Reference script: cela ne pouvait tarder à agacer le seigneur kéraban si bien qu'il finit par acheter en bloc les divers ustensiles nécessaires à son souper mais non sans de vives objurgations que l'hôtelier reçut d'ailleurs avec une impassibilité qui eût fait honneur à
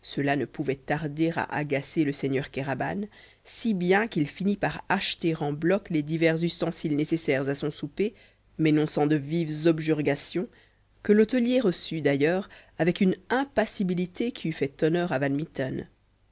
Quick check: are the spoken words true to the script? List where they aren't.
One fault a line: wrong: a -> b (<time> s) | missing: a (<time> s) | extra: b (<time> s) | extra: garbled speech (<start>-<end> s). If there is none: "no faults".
no faults